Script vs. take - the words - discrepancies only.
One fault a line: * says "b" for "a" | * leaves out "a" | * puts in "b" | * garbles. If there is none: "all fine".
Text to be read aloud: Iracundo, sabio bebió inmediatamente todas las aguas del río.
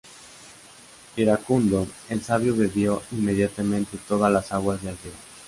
* puts in "el"